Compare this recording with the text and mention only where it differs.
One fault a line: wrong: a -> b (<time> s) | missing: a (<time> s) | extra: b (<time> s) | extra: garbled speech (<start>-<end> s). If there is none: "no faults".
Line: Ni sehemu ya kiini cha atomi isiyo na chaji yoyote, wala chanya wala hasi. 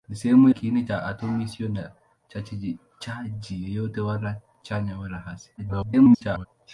missing: ya (0.5 s)
extra: garbled speech (5.6-6.5 s)